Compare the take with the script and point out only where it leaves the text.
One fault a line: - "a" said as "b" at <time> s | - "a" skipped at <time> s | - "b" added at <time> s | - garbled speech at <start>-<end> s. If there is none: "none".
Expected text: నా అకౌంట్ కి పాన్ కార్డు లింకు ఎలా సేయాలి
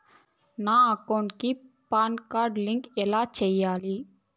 none